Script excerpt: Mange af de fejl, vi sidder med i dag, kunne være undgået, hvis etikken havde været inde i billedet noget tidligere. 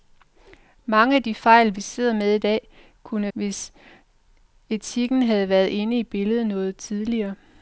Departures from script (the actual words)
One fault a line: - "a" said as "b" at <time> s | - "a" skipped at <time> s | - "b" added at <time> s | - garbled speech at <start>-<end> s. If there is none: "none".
- "være undgået" skipped at 3.3 s